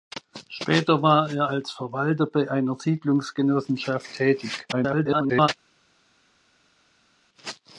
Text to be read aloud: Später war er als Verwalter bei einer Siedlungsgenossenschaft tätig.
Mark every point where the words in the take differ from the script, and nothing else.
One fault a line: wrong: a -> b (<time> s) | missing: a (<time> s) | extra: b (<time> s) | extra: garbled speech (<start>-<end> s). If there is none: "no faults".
extra: garbled speech (4.7-5.5 s)